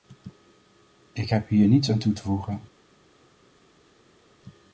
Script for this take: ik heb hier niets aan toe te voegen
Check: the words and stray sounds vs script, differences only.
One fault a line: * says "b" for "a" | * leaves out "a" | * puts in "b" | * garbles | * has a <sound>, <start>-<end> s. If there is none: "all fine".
all fine